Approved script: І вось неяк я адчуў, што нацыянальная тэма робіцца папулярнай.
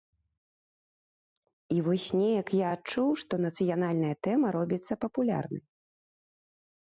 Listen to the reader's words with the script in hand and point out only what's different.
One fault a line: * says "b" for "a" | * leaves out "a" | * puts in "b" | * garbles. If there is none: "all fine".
all fine